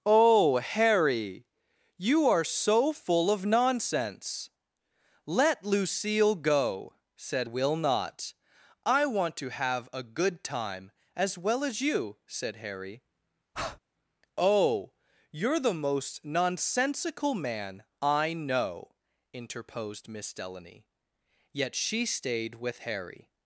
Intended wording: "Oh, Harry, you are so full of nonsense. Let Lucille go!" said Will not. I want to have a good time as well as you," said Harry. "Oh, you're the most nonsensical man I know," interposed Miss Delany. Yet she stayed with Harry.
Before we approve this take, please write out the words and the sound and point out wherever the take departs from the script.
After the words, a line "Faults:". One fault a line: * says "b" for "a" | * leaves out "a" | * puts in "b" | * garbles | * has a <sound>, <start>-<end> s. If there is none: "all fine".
"Oh, Harry, you are so full of nonsense. Let Lucille go!" said Will not. I want to have a good time as well as you," said Harry. "Oh, you're the most nonsensical man I know," interposed Miss Delany. Yet she stayed with Harry.
Faults:
* has a breath, 13.5-13.8 s